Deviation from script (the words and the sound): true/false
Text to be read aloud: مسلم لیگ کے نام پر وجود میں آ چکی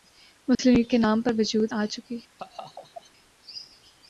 true